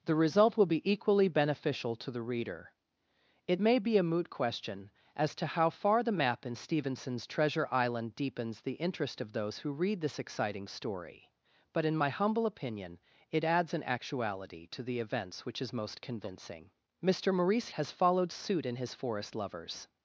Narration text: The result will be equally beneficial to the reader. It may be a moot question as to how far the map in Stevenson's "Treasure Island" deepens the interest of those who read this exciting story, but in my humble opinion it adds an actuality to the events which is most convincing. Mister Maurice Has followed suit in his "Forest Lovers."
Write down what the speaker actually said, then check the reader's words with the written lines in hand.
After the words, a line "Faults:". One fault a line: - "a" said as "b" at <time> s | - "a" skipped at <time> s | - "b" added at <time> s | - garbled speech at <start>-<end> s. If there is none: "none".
The result will be equally beneficial to the reader. It may be a moot question as to how far the map in Stevenson's "Treasure Island" deepens the interest of those who read this exciting story, but in my humble opinion it adds an actuality to the events which is most convincing. Mister Maurice Has followed suit in his "Forest Lovers."
Faults:
none